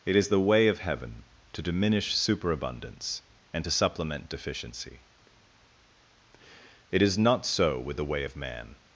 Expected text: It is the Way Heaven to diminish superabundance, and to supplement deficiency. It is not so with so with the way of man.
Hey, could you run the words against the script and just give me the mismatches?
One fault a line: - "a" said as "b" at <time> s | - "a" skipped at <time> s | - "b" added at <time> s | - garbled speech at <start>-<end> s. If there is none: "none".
- "of" added at 0.7 s
- "so with" skipped at 8.0 s